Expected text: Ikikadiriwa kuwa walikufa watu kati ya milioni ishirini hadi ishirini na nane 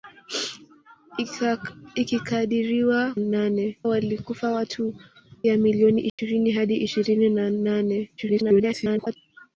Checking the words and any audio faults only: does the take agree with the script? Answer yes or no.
no